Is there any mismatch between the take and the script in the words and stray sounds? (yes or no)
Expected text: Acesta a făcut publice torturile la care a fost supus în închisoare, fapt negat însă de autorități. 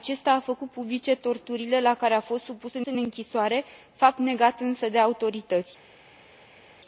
yes